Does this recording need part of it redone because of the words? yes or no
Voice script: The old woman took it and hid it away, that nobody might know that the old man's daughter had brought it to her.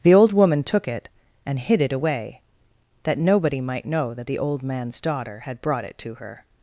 no